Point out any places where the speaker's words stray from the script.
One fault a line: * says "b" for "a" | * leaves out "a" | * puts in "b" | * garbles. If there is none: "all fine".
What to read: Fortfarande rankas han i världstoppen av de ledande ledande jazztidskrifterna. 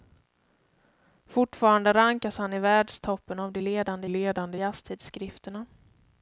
all fine